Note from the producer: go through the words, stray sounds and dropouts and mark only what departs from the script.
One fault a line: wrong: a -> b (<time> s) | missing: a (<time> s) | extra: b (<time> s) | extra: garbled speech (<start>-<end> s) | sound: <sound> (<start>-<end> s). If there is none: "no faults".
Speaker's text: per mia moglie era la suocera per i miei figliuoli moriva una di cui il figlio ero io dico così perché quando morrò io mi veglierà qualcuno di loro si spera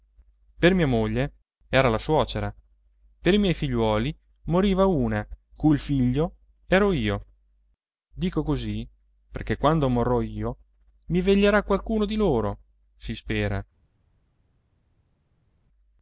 missing: di (5.2 s)